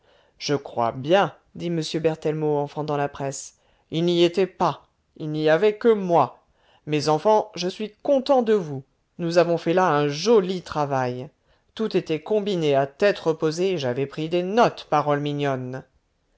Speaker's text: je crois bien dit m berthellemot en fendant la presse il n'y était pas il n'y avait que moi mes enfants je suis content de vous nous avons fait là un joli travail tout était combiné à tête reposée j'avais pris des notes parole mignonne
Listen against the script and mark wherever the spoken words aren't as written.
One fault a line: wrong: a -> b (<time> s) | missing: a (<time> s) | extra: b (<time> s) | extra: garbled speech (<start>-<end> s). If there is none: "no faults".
no faults